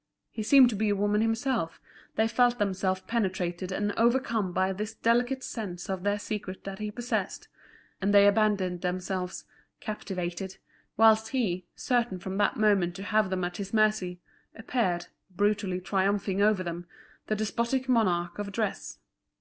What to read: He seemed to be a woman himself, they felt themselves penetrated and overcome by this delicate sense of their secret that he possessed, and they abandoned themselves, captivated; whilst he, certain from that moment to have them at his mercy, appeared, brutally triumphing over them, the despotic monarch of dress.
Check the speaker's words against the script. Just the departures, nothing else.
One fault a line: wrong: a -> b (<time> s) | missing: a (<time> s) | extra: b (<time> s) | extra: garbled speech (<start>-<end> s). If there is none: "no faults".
no faults